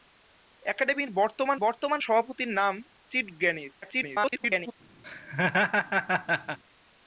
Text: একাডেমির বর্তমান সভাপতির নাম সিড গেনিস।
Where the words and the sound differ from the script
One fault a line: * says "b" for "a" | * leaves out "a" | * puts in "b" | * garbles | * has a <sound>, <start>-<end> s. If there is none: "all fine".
* puts in "বর্তমান"
* garbles
* has a laugh, 5.0-6.6 s